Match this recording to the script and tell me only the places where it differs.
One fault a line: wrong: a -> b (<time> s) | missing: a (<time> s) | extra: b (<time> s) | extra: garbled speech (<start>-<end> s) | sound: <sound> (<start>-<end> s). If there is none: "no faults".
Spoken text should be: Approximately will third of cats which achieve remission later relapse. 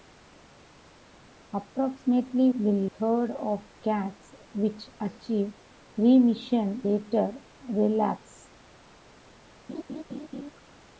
sound: laugh (9.7-10.5 s)